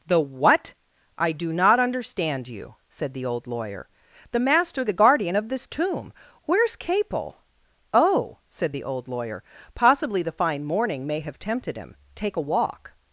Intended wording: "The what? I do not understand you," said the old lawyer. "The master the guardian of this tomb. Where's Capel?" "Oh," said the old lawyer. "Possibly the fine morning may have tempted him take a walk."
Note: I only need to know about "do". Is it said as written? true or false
true